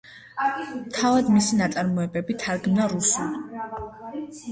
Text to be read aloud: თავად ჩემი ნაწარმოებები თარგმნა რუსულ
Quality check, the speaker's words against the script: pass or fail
fail